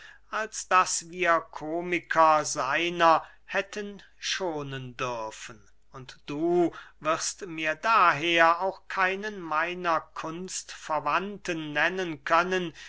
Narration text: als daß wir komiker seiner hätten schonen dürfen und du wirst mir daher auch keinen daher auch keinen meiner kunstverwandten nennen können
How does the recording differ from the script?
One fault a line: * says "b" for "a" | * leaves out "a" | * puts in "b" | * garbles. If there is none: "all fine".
* leaves out "daher auch keinen"